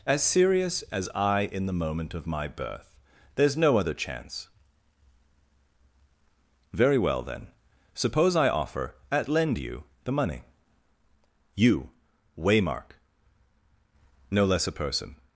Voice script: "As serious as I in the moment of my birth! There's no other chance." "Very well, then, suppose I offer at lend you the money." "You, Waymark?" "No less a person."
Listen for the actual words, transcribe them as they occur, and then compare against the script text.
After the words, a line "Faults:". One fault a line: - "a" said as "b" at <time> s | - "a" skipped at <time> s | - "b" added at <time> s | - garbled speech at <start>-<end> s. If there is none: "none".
"As serious as I in the moment of my birth! There's no other chance." "Very well, then, suppose I offer at lend you the money." "You, Waymark?" "No less a person."
Faults:
none